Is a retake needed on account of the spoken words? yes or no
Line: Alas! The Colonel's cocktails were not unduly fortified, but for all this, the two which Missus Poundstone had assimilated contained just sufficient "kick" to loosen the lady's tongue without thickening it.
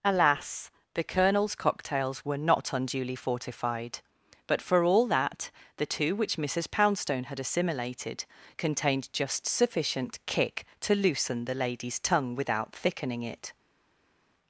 yes